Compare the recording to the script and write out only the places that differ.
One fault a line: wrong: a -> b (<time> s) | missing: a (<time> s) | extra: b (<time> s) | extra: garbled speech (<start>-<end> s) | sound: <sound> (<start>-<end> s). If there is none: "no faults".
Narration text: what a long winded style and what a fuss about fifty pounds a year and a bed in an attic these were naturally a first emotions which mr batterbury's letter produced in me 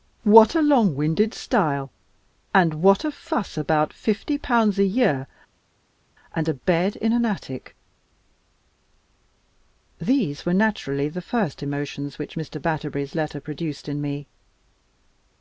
wrong: a -> the (11.1 s)